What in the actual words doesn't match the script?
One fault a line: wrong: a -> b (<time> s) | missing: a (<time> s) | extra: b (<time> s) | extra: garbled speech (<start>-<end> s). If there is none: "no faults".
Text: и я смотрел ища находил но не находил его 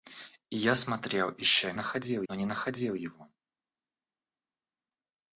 no faults